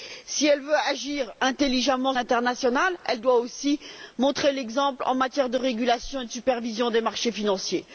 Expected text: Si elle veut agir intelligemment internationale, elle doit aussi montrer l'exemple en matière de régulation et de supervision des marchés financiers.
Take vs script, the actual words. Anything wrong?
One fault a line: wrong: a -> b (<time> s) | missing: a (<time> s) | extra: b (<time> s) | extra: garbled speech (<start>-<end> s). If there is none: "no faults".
no faults